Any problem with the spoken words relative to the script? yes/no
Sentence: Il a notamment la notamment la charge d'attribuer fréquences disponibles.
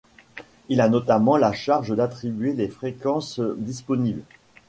yes